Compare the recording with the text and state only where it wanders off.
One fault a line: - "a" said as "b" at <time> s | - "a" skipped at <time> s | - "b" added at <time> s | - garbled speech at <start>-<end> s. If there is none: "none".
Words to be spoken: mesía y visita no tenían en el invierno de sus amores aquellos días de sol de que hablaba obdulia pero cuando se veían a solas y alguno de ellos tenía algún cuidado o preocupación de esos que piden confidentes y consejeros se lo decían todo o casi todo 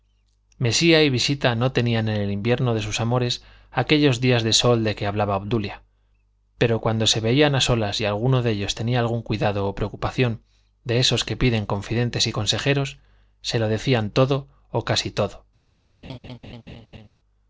none